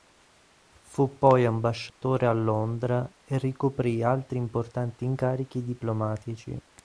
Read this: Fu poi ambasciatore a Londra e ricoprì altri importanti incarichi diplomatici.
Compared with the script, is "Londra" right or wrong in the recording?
right